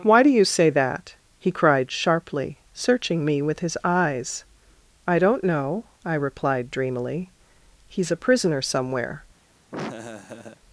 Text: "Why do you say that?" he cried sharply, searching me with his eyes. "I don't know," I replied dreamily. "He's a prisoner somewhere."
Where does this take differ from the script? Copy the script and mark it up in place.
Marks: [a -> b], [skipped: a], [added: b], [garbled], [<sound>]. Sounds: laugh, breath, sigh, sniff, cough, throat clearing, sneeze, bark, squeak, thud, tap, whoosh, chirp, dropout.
"Why do you say that?" he cried sharply, searching me with his eyes. "I don't know," I replied dreamily. "He's a prisoner somewhere." [laugh]